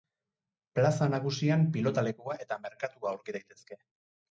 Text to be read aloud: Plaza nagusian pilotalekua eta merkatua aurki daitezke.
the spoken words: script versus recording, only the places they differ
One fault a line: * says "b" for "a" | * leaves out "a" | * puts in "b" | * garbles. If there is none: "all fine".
all fine